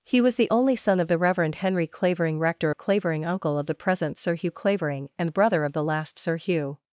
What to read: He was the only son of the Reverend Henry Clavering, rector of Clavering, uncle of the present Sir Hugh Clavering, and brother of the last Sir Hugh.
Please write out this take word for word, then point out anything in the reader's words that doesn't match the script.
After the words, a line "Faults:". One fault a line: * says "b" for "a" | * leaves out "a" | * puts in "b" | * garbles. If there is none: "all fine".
He was the only son of the Reverend Henry Clavering, rector of Clavering, uncle of the present Sir Hugh Clavering, and brother of the last Sir Hugh.
Faults:
all fine